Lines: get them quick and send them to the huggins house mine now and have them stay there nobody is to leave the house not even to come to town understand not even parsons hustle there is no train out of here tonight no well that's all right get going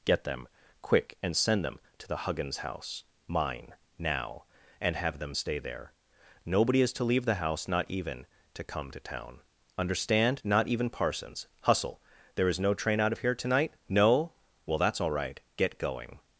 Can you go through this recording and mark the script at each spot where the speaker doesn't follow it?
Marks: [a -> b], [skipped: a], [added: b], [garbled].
get them quick and send them to the huggins house mine now and have them stay there nobody is to leave the house not even to come to town understand not even parsons hustle there is no train out of here tonight no well that's all right get going